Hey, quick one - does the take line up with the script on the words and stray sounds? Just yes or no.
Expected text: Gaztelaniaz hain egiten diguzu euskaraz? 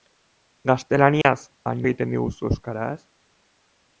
no